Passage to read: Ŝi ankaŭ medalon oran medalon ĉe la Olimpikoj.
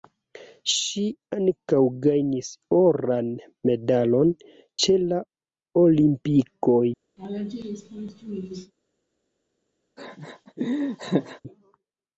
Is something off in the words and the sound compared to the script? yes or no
yes